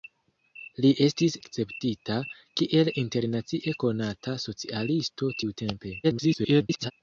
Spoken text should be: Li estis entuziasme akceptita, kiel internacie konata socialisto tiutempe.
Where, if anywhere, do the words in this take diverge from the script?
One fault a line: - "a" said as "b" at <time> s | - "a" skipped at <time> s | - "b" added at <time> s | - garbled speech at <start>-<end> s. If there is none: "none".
- "entuziasme" skipped at 1.4 s
- garbled speech at 6.0-6.9 s